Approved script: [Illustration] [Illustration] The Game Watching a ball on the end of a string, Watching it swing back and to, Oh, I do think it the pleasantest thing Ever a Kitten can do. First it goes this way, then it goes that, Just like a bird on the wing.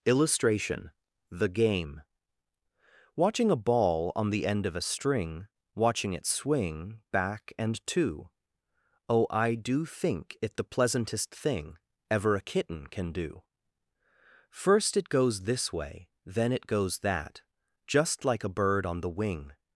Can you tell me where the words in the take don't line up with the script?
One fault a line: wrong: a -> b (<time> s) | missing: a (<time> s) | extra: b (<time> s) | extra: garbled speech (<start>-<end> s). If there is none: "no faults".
missing: Illustration (0.9 s)